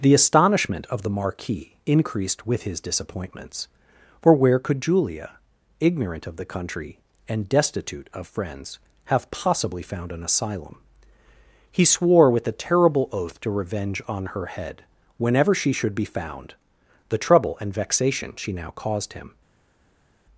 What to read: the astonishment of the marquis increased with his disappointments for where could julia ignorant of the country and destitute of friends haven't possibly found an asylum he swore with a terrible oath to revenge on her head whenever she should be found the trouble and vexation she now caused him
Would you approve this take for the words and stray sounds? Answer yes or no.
no